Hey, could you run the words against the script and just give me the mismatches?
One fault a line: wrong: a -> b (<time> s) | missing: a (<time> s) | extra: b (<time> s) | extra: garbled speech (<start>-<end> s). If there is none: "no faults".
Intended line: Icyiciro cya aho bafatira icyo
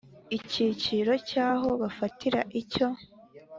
no faults